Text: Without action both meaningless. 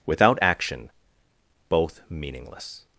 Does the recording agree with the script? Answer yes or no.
yes